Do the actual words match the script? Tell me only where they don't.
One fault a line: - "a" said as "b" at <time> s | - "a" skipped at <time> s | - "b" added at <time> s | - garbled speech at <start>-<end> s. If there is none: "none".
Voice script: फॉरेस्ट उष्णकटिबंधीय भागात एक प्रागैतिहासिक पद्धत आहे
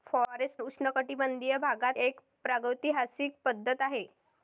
none